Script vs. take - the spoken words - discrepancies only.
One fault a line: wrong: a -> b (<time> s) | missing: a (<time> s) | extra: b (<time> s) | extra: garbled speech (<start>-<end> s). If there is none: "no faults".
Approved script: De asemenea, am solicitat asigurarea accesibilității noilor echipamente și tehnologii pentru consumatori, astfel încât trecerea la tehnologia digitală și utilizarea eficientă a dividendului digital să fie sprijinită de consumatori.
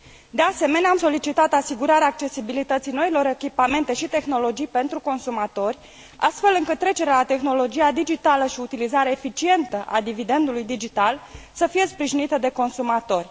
no faults